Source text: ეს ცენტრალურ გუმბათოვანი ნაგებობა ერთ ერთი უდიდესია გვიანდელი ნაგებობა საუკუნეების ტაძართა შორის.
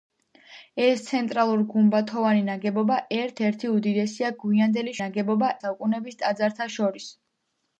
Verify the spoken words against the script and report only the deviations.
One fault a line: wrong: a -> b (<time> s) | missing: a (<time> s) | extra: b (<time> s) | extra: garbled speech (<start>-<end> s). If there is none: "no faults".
no faults